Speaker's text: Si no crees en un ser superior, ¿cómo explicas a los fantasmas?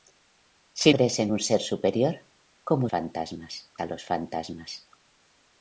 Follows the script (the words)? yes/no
no